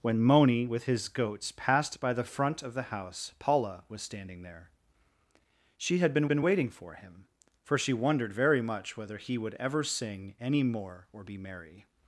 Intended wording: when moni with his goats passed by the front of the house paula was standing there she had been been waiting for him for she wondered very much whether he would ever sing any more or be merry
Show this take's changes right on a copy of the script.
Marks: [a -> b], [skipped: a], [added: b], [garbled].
when moni with his goats passed by the front of the house paula was standing there she had been been waiting for him for she wondered very much whether he would ever sing any more or be merry